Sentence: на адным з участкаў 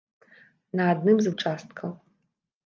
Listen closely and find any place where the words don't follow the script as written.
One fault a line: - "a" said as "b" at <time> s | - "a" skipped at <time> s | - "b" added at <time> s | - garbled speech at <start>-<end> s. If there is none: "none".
none